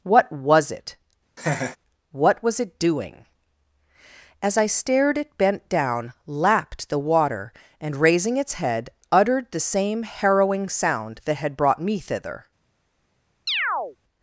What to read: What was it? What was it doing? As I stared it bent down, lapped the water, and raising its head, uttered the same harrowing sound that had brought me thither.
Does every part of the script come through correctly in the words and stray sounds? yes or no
no